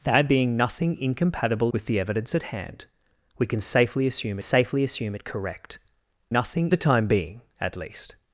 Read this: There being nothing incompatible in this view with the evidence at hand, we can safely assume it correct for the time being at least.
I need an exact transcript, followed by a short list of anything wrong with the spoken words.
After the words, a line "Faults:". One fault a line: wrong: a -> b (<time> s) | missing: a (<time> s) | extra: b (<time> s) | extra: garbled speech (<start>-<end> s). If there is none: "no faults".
There being nothing incompatible with the evidence at hand, we can safely assume safely assume it correct nothing the time being at least.
Faults:
missing: in this view (1.7 s)
extra: safely assume (4.4 s)
wrong: for -> nothing (6.3 s)